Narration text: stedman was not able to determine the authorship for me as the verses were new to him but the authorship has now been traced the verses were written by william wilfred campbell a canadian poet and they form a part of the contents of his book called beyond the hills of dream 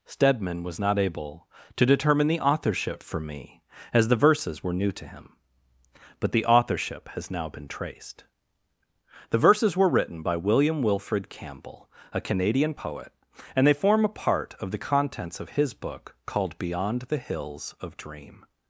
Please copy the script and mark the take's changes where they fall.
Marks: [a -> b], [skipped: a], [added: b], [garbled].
stedman was not able to determine the authorship for me as the verses were new to him but the authorship has now been traced the verses were written by william wilfred campbell a canadian poet and they form a part of the contents of his book called beyond the hills of dream